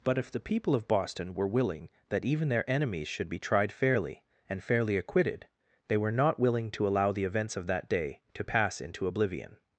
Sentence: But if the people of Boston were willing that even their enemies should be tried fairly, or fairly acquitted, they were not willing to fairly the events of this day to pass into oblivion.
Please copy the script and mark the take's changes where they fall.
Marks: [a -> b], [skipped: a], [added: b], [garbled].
But if the people of Boston were willing that even their enemies should be tried fairly, [or -> and] fairly acquitted, they were not willing to [fairly -> allow] the events of [this -> that] day to pass into oblivion.